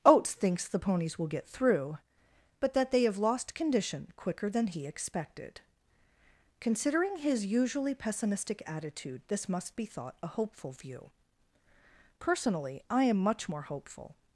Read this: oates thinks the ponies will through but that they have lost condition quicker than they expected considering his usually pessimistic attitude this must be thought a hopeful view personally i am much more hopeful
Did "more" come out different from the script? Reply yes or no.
no